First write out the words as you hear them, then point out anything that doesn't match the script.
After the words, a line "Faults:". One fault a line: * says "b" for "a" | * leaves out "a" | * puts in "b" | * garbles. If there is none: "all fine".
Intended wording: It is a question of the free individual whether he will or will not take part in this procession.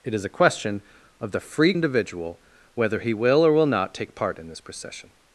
It is a question of the free individual whether he will or will not take part in this procession.
Faults:
all fine